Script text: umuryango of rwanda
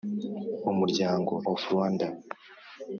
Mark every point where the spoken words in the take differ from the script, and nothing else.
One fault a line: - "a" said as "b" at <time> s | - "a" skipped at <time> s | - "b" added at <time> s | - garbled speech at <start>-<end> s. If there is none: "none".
none